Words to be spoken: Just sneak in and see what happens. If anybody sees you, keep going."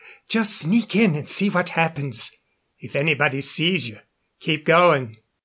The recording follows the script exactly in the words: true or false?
true